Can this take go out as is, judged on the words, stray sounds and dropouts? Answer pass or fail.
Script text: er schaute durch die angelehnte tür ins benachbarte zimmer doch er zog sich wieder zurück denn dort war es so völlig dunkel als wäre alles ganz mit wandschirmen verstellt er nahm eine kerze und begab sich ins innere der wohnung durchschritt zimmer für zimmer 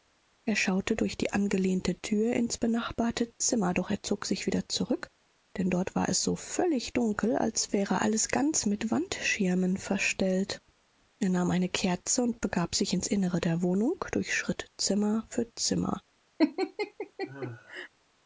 fail